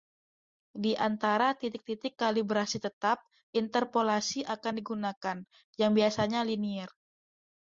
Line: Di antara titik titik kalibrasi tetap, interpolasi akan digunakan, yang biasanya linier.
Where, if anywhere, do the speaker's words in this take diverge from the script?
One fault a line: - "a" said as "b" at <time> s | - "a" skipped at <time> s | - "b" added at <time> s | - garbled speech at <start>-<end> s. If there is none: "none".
none